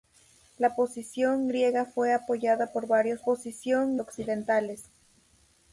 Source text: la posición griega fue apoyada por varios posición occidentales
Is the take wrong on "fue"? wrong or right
right